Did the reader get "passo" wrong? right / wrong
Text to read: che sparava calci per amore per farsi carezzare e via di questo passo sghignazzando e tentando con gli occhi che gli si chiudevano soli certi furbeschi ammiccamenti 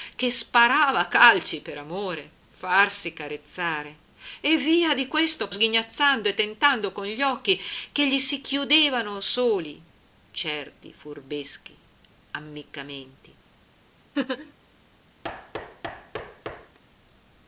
wrong